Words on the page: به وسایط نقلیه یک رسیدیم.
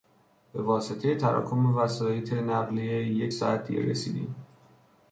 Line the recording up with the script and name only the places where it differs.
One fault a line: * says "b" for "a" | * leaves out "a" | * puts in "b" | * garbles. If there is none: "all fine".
* puts in "واسطهی تراکم"
* puts in "ساعت دیر"